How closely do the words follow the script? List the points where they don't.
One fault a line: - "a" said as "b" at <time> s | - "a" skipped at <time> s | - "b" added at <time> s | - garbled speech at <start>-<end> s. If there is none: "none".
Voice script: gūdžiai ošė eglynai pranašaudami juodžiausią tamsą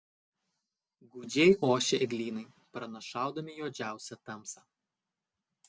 none